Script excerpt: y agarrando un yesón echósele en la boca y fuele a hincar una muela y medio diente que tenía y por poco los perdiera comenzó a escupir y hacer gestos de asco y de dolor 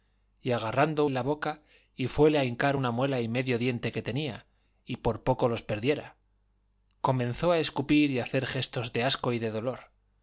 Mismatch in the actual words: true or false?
true